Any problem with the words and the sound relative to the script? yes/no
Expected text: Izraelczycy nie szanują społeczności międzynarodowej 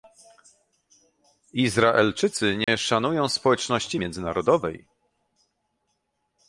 yes